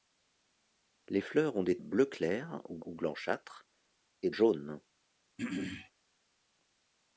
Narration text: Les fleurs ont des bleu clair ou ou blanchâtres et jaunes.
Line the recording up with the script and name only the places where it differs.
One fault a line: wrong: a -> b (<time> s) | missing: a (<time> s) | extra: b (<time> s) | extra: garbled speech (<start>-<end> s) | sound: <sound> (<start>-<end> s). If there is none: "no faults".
sound: throat clearing (5.4-5.9 s)